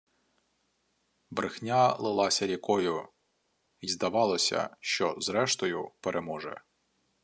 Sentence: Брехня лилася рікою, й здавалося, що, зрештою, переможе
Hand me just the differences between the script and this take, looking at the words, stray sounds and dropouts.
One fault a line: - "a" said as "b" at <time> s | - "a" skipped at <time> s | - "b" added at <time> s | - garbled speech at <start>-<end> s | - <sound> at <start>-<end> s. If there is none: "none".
none